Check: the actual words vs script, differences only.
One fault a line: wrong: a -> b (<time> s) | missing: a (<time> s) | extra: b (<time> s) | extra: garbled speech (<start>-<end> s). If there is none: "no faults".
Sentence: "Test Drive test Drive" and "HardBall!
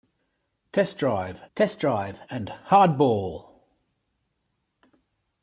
no faults